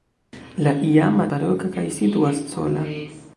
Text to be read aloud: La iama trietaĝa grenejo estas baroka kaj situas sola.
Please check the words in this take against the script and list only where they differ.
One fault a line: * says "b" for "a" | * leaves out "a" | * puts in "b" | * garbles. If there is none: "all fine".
* leaves out "trietaĝa grenejo estas"